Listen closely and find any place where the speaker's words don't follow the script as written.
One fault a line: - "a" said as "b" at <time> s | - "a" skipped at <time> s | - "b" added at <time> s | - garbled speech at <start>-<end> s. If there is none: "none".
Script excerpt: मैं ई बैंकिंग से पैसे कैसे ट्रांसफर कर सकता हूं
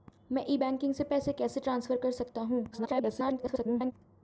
- garbled speech at 2.7-3.9 s